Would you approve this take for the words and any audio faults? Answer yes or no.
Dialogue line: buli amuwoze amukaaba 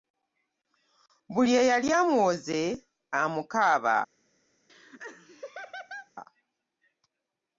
no